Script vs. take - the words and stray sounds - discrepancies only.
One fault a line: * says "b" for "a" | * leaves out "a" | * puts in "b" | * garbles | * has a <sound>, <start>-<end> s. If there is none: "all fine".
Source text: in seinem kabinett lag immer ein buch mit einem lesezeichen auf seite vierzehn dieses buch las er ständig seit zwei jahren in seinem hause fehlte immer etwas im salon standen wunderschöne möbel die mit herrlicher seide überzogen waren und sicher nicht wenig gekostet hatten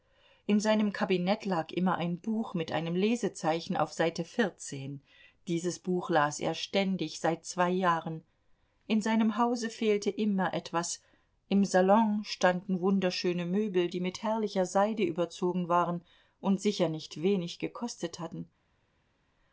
all fine